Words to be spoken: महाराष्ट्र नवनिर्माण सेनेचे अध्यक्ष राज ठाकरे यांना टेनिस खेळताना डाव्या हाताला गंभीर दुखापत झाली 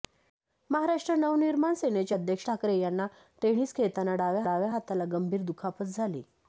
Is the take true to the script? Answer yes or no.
no